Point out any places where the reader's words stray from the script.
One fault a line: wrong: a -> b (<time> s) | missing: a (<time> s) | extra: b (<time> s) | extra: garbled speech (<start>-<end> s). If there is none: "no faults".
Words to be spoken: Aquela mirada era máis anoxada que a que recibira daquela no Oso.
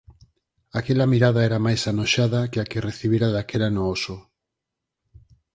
no faults